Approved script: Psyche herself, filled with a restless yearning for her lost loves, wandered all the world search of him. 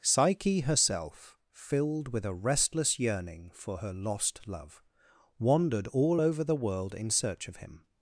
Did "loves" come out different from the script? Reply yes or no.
yes